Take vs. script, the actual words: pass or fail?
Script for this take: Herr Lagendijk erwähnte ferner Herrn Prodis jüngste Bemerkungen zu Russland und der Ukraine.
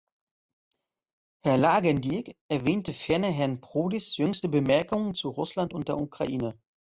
pass